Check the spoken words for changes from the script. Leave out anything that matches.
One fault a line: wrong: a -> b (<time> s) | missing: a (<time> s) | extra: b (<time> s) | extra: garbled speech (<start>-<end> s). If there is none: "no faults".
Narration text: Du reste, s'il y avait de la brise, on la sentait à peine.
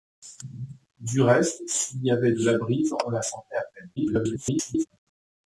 extra: garbled speech (4.0-4.9 s)